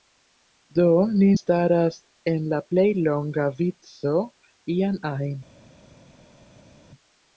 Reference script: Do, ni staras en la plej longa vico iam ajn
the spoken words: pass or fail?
pass